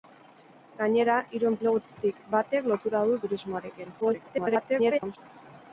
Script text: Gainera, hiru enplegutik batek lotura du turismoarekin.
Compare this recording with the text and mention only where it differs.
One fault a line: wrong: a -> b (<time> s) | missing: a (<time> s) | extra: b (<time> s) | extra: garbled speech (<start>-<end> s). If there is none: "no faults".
extra: garbled speech (4.0-5.2 s)